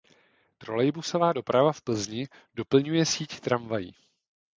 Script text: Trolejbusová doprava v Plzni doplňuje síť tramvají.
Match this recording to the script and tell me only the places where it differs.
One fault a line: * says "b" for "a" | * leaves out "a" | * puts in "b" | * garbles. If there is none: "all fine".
all fine